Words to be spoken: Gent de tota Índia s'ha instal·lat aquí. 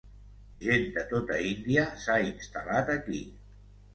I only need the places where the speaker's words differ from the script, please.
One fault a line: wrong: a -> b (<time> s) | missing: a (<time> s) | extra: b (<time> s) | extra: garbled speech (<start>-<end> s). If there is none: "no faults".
no faults